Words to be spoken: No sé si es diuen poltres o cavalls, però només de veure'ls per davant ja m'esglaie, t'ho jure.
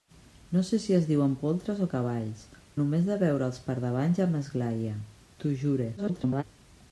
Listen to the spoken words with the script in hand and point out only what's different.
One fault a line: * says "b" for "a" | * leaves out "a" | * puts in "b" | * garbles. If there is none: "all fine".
* leaves out "però"
* garbles